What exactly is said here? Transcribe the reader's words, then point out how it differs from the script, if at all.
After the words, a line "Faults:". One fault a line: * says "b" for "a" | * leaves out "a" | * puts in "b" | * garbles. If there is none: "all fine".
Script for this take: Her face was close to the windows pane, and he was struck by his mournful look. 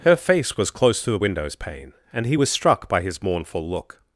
Her face was close to the windows pane, and he was struck by his mournful look.
Faults:
all fine